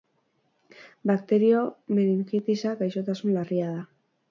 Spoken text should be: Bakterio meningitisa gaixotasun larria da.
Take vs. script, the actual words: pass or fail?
pass